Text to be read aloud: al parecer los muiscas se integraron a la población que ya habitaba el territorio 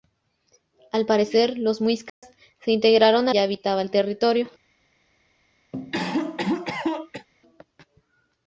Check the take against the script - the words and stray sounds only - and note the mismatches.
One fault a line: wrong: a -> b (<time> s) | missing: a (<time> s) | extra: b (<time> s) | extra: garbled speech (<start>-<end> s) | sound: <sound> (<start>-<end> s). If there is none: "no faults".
sound: dropout (2.1-2.2 s)
missing: la población que (3.4 s)
sound: cough (5.7-7.3 s)